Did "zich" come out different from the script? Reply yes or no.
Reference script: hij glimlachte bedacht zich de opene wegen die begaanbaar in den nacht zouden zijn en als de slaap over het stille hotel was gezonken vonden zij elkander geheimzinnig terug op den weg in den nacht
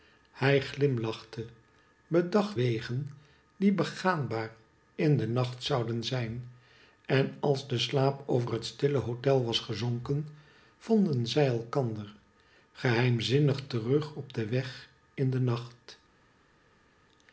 yes